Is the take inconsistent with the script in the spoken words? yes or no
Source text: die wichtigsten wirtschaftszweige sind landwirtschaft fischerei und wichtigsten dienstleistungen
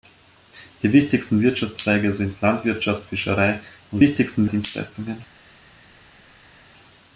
no